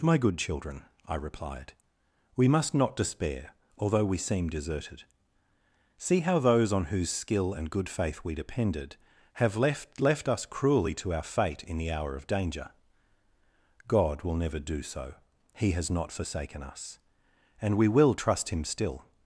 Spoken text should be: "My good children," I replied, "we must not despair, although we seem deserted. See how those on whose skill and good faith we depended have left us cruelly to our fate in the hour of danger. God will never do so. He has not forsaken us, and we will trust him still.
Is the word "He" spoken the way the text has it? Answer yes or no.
yes